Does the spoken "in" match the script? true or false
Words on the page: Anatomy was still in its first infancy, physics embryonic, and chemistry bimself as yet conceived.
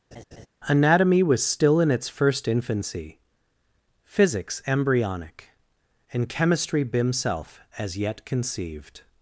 true